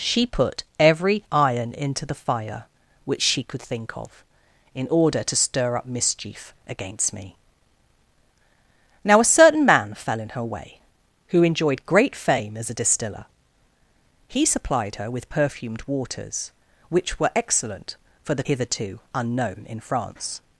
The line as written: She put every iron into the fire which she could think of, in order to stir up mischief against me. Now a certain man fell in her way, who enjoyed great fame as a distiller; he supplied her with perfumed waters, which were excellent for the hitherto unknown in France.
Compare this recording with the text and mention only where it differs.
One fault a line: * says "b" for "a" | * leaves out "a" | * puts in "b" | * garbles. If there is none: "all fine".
all fine